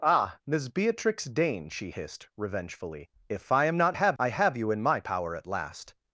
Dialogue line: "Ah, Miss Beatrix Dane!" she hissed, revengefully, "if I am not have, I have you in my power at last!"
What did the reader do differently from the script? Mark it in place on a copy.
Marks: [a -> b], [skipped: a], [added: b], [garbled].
"Ah, Miss Beatrix Dane!" she hissed, revengefully, "if I am not have, I have you in my power at last!"